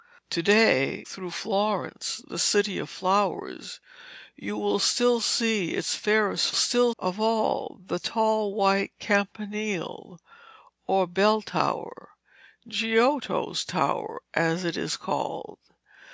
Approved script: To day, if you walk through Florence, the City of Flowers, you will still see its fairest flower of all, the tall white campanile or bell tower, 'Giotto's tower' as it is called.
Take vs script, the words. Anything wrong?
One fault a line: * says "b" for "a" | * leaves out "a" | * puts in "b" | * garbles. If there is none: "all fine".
* leaves out "if you walk"
* says "still" for "flower"